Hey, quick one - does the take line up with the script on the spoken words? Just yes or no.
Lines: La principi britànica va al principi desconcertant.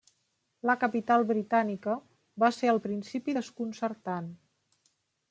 no